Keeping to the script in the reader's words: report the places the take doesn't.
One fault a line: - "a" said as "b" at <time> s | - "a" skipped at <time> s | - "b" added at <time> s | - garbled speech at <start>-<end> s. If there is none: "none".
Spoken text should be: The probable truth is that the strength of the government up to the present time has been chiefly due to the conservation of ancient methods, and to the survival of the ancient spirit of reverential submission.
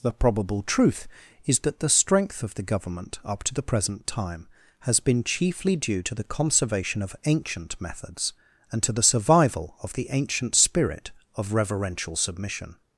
none